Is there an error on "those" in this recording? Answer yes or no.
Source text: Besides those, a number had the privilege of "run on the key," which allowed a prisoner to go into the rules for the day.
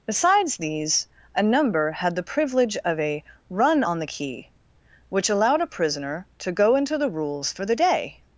yes